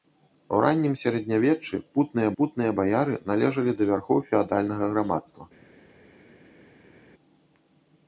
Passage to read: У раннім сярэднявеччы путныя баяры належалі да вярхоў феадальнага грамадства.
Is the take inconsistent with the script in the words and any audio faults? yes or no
yes